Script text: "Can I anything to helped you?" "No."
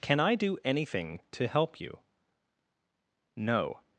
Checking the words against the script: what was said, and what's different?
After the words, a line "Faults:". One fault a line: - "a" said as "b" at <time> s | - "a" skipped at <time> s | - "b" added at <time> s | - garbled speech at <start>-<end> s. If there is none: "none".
"Can I do anything to help you?" "No."
Faults:
- "do" added at 0.3 s
- "helped" said as "help" at 1.5 s